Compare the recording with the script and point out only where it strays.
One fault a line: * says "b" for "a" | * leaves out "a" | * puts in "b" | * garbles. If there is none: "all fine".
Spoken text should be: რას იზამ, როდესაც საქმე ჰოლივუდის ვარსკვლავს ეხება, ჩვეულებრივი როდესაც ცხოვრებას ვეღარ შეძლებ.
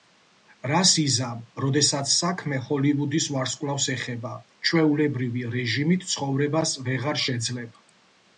* says "რეჟიმით" for "როდესაც"